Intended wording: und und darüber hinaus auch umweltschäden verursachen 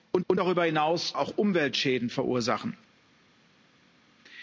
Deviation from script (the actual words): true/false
false